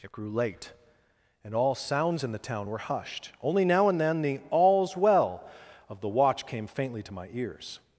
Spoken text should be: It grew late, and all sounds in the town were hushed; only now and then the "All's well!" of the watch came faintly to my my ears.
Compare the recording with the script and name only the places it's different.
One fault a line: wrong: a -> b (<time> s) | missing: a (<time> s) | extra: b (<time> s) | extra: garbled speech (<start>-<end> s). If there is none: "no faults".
missing: my (7.3 s)